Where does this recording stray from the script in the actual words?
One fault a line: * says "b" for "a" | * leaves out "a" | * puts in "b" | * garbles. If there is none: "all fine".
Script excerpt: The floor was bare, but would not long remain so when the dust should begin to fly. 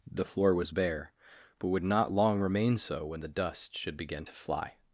all fine